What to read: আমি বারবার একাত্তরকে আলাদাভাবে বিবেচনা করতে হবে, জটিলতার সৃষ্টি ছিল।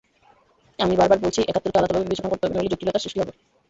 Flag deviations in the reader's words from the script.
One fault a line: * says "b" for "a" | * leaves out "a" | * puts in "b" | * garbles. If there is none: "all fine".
* puts in "বলছি"
* puts in "নইলে"
* says "হবে" for "ছিল"